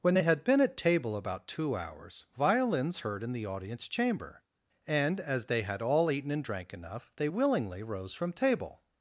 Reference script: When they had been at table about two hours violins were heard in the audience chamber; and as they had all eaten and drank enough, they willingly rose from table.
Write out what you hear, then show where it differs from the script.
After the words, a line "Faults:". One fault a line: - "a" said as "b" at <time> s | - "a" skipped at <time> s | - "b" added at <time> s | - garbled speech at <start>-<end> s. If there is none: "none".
When they had been at table about two hours violins heard in the audience chamber; and as they had all eaten and drank enough, they willingly rose from table.
Faults:
- "were" skipped at 3.0 s